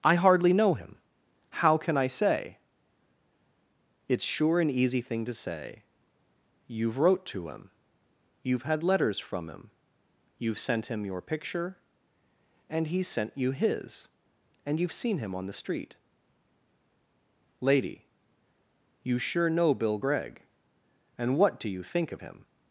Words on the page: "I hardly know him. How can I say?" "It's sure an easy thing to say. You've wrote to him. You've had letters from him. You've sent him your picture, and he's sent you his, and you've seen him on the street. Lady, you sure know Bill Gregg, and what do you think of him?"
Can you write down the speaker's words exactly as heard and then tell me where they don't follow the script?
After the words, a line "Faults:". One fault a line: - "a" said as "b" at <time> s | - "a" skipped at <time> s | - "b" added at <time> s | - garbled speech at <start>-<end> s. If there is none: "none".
"I hardly know him. How can I say?" "It's sure an easy thing to say. You've wrote to him. You've had letters from him. You've sent him your picture, and he's sent you his, and you've seen him on the street. Lady, you sure know Bill Gregg, and what do you think of him?"
Faults:
none